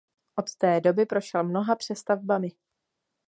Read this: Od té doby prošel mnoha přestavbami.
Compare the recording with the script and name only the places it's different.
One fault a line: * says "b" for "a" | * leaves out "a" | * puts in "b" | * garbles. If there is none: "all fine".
all fine